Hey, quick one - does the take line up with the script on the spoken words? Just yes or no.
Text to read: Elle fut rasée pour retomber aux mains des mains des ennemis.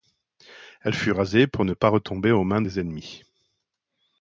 no